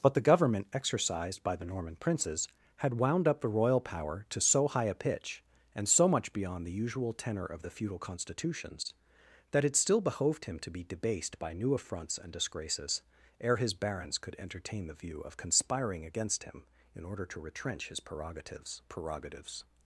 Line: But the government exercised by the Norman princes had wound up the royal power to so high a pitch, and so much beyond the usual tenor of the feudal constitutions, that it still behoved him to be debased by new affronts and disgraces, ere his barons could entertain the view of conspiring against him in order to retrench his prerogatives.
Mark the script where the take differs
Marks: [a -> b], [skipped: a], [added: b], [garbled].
But the government exercised by the Norman princes had wound up the royal power to so high a pitch, and so much beyond the usual tenor of the feudal constitutions, that it still behoved him to be debased by new affronts and disgraces, ere his barons could entertain the view of conspiring against him in order to retrench his prerogatives. [added: prerogatives]